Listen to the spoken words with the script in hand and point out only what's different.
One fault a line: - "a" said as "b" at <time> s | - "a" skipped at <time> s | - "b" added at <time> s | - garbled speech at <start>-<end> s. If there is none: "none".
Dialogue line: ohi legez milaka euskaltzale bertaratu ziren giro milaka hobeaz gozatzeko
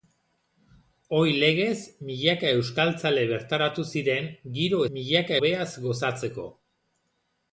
none